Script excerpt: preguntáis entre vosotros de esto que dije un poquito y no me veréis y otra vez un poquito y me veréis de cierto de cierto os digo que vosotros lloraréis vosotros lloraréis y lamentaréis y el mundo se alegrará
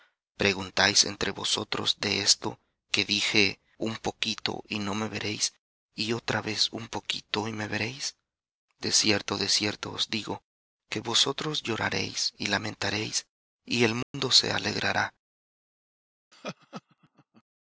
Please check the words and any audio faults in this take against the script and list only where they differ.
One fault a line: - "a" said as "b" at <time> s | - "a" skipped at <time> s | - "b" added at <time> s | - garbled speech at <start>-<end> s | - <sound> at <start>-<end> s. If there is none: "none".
- "vosotros lloraréis" skipped at 12.3 s
- dropout at 14.0-14.1 s
- laugh at 16.3-17.4 s